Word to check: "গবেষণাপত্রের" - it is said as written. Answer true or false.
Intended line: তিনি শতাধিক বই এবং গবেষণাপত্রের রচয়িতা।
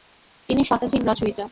false